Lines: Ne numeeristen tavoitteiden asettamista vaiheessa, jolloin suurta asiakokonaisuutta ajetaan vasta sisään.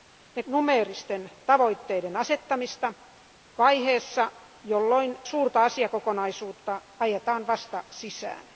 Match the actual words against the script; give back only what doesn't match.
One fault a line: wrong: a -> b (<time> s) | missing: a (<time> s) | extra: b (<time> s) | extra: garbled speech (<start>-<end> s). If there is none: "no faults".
no faults